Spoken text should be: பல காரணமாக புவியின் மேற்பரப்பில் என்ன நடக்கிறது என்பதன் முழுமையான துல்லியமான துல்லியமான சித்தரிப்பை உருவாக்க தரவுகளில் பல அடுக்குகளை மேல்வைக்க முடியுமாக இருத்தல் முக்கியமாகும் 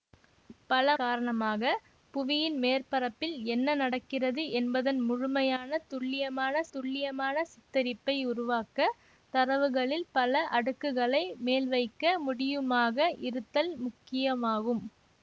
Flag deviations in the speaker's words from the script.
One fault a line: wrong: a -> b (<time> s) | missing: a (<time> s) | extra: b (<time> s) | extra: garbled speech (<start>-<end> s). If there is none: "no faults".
no faults